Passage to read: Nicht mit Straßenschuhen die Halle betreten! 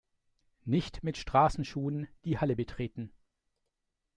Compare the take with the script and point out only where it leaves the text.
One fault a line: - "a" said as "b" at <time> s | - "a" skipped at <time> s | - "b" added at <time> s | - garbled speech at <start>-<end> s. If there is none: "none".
none